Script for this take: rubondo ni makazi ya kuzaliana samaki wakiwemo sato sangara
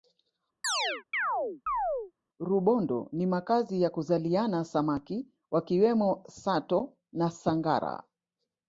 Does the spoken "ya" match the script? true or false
true